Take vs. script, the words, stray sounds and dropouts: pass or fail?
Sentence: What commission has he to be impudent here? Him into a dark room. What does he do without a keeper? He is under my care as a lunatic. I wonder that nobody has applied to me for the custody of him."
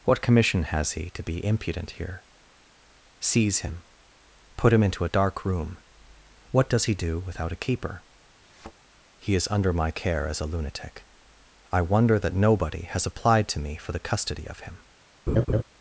fail